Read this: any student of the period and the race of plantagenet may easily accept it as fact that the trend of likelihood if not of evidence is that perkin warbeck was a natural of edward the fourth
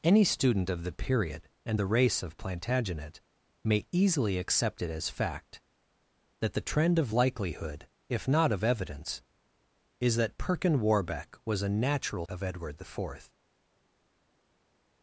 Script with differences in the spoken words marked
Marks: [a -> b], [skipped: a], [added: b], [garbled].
any student of the period and the race of plantagenet may easily accept it as fact that the trend of likelihood if not of evidence is that perkin warbeck was a natural of edward the fourth